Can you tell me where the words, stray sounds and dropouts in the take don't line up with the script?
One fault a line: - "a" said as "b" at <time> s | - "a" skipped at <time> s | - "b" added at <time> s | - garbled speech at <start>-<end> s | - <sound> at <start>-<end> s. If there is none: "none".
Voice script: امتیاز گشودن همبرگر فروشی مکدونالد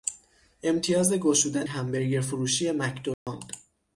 - dropout at 3.1-3.3 s